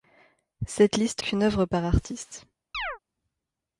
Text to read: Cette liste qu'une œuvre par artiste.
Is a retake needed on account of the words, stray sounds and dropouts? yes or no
yes